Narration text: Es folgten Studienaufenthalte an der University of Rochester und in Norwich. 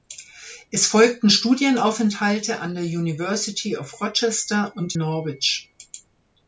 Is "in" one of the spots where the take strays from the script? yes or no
yes